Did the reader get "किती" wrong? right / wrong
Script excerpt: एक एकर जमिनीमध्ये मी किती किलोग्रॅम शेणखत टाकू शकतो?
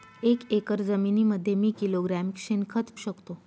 wrong